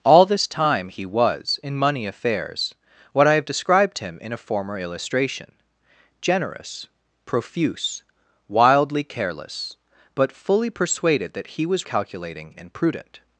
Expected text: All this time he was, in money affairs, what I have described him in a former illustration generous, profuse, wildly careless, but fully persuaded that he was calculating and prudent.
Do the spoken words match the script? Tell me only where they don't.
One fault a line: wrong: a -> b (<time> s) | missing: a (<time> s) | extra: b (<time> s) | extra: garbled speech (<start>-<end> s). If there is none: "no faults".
no faults